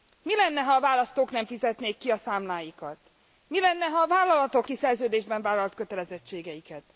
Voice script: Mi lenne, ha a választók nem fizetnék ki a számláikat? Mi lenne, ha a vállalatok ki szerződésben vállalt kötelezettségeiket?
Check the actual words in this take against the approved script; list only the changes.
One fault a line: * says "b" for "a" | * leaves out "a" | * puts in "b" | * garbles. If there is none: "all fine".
all fine